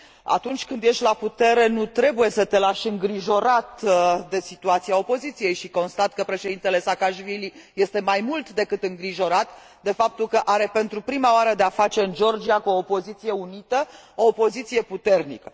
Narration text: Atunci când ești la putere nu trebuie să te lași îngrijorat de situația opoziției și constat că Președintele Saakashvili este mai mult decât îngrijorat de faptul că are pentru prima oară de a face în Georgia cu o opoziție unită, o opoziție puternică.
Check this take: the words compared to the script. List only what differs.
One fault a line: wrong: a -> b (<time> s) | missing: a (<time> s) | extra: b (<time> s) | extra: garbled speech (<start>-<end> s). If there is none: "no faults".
no faults